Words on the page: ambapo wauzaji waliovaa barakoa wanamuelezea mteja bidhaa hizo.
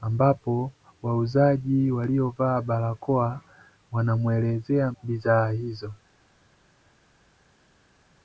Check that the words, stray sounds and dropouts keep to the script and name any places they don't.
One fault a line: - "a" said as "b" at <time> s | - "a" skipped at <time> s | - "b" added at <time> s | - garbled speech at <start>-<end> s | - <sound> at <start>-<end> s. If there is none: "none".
- "mteja" skipped at 4.9 s